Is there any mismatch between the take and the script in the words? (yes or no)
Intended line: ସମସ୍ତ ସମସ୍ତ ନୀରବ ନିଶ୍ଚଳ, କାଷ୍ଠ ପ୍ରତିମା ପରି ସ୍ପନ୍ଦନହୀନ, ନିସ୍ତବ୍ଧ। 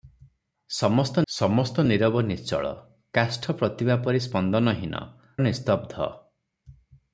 no